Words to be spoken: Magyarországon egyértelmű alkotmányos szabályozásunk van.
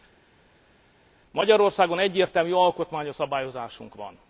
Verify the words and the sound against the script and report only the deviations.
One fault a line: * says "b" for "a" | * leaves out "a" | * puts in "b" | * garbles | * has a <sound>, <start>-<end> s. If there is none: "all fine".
all fine